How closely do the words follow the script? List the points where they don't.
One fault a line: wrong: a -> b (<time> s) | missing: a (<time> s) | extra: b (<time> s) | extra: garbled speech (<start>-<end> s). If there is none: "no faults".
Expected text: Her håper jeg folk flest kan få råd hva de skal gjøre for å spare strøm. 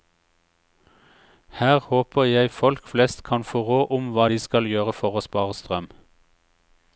extra: om (4.0 s)